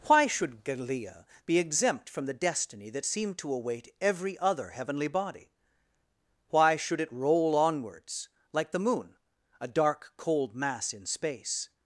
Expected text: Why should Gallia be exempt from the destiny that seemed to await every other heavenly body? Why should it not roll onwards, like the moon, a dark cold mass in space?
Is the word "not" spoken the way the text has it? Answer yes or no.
no